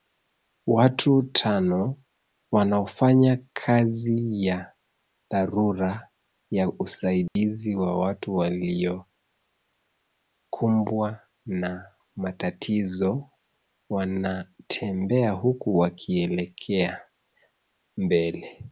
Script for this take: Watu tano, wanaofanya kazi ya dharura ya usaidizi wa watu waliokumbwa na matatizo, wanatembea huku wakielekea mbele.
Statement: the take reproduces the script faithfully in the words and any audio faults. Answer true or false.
false